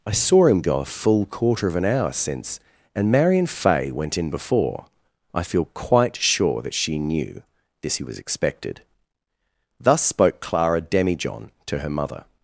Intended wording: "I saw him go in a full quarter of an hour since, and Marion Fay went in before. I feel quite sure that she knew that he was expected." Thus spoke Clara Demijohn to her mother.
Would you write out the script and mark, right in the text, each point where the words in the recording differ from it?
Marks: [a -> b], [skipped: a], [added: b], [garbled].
"I saw him go [skipped: in] a full quarter of an hour since, and Marion Fay went in before. I feel quite sure that she knew [that -> this] he was expected." Thus spoke Clara Demijohn to her mother.